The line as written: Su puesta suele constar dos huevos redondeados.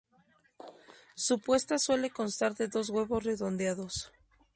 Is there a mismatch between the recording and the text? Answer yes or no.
yes